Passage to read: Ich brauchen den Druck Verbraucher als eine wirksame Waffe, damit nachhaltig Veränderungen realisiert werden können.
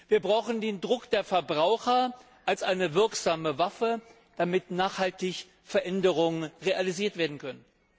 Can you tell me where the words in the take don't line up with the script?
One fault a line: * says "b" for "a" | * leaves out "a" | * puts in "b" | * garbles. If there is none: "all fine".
* says "Wir" for "Ich"
* puts in "der"